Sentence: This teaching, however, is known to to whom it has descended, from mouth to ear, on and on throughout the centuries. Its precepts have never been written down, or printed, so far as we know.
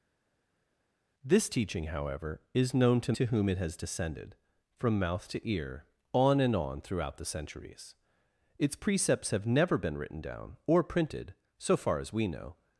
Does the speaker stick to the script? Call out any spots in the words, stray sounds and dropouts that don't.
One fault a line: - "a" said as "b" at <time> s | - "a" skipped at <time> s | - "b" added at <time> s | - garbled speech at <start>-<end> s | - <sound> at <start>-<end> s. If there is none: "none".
none